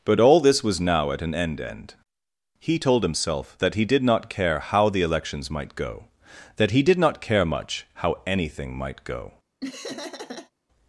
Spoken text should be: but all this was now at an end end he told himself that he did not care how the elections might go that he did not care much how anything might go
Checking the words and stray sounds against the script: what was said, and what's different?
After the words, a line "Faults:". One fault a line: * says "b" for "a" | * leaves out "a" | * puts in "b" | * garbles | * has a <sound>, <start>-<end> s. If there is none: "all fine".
but all this was now at an end end he told himself that he did not care how the elections might go that he did not care much how anything might go
Faults:
* has a laugh, 9.6-10.5 s